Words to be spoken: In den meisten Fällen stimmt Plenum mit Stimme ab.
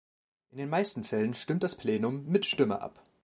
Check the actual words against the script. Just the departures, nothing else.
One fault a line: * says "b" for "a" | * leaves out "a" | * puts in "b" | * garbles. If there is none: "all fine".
* puts in "das"